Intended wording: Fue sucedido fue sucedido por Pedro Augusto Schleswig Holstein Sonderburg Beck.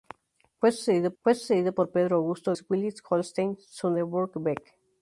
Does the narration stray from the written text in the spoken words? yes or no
no